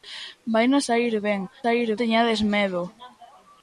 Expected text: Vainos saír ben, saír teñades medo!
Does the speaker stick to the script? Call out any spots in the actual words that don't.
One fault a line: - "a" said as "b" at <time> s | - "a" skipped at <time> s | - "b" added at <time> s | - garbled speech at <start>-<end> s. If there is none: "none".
none